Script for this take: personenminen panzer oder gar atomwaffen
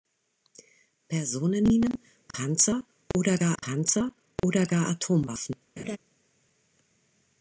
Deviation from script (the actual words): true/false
true